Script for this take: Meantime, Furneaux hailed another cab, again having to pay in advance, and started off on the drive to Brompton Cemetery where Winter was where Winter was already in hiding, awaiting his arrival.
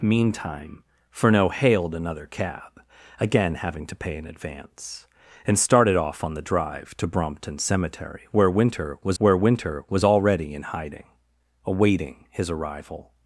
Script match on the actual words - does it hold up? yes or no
yes